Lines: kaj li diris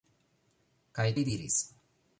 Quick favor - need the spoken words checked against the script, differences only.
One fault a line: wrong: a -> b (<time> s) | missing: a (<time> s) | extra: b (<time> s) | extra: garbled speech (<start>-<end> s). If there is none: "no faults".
no faults